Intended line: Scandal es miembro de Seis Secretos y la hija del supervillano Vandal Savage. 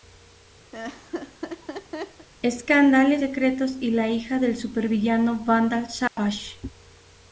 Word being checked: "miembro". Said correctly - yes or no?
no